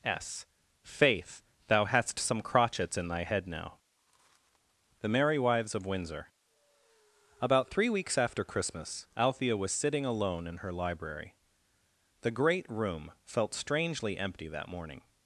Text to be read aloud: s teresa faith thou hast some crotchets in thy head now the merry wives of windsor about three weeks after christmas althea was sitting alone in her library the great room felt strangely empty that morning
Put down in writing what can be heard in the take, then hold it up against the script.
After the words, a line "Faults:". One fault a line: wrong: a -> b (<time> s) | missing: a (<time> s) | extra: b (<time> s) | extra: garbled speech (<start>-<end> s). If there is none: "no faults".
s faith thou hast some crotchets in thy head now the merry wives of windsor about three weeks after christmas althea was sitting alone in her library the great room felt strangely empty that morning
Faults:
missing: teresa (0.5 s)